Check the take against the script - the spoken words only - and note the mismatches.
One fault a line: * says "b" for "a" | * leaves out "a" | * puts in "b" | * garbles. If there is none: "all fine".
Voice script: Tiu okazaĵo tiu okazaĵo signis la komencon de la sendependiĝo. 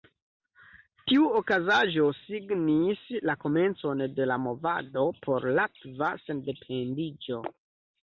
* leaves out "tiu okazaĵo"
* puts in "movado por latva"